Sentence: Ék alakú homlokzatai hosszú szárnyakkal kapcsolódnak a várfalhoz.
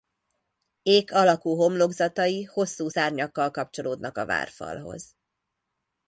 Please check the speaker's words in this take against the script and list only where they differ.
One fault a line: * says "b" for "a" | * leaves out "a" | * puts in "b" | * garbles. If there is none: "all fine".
all fine